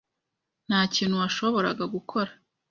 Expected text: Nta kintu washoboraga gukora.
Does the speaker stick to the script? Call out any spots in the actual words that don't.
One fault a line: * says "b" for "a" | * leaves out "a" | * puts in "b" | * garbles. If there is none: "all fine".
all fine